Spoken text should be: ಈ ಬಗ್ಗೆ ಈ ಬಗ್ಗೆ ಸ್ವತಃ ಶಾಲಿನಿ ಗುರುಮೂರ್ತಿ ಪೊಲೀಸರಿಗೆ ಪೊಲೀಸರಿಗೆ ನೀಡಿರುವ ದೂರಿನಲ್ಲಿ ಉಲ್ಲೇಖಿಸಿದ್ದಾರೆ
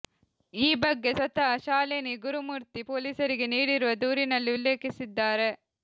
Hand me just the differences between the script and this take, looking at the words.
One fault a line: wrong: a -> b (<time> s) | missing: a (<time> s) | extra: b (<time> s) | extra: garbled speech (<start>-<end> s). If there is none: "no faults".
missing: ಈ ಬಗ್ಗೆ (1.1 s)
missing: ಪೊಲೀಸರಿಗೆ (3.5 s)